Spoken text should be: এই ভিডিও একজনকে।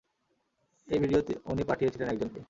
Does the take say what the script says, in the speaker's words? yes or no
no